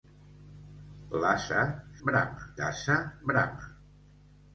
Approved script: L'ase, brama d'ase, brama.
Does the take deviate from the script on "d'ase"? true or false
false